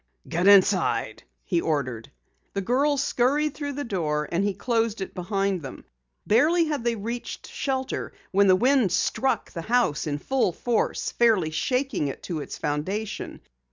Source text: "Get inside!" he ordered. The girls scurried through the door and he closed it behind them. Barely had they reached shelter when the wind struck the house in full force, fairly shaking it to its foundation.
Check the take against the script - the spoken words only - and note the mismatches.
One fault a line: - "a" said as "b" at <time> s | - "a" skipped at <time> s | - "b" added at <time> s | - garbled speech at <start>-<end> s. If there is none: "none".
none